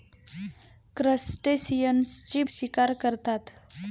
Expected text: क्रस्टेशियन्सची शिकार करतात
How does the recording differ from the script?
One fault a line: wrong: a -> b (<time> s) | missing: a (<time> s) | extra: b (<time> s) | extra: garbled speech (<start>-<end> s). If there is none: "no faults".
no faults